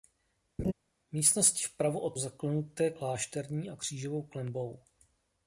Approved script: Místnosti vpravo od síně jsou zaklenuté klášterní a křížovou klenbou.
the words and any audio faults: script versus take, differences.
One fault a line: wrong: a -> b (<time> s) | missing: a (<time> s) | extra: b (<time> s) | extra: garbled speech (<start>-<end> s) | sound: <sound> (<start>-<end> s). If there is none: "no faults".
sound: laugh (0.6-0.7 s)
missing: síně jsou (2.2 s)